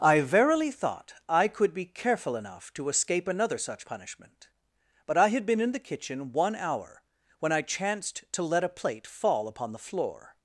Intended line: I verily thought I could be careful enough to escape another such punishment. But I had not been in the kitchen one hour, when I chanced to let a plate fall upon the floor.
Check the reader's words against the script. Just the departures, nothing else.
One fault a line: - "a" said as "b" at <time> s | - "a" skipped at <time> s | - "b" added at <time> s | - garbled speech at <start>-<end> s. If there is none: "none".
- "not" skipped at 5.5 s